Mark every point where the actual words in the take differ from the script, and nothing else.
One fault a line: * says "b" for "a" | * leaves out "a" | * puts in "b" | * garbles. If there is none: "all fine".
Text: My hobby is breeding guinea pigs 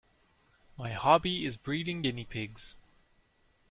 all fine